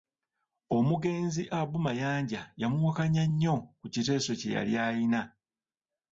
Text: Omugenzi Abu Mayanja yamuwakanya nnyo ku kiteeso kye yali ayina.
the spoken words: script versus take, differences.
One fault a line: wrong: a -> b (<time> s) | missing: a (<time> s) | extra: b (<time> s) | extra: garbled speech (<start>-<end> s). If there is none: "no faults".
no faults